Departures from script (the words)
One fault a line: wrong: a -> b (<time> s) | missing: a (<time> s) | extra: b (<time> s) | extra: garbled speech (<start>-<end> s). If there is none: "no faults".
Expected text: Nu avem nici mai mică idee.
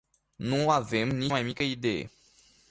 no faults